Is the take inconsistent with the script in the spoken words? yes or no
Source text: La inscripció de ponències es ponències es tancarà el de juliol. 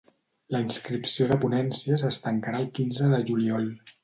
yes